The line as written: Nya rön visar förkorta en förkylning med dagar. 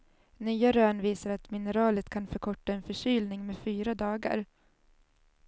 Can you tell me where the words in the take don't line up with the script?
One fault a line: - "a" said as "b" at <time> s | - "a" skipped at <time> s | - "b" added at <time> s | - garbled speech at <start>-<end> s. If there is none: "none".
- "att mineralet kan" added at 1.3 s
- "fyra" added at 3.6 s